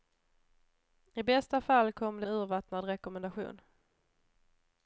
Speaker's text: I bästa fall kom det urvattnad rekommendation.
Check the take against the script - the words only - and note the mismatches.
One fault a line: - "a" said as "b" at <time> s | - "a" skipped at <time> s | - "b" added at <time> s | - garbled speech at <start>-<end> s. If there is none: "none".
none